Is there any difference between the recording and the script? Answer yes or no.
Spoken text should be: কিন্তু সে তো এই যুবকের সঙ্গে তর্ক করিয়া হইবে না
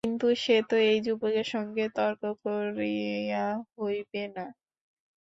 no